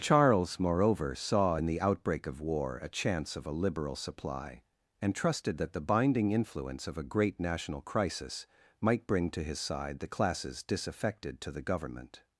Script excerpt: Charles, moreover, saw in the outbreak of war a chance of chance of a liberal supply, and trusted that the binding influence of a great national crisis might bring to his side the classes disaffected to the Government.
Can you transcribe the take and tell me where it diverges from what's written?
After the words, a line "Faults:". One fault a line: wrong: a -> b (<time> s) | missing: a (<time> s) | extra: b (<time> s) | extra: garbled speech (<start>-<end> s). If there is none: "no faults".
Charles, moreover, saw in the outbreak of war a chance of a liberal supply, and trusted that the binding influence of a great national crisis might bring to his side the classes disaffected to the Government.
Faults:
missing: chance of (3.4 s)